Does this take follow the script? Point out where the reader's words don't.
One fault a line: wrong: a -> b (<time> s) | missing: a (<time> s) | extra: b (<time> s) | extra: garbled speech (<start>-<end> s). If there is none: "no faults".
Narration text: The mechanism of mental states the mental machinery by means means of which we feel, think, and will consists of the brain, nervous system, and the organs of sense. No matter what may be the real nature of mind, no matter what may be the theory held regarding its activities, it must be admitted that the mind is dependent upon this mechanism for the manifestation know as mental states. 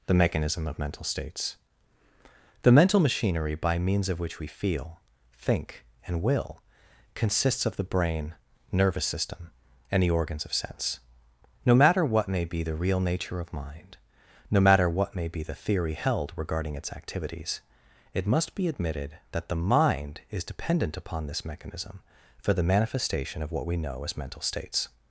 missing: means (4.1 s)
extra: of what we (23.4 s)